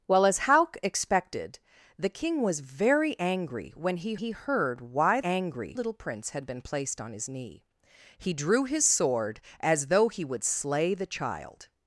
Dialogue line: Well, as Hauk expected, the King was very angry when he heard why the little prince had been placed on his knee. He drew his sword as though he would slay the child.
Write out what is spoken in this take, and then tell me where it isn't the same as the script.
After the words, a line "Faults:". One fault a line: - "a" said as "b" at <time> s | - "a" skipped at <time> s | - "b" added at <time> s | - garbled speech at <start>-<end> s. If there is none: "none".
Well, as Hauk expected, the King was very angry when he he heard why angry little prince had been placed on his knee. He drew his sword as though he would slay the child.
Faults:
- "he" added at 4.1 s
- "the" said as "angry" at 5.2 s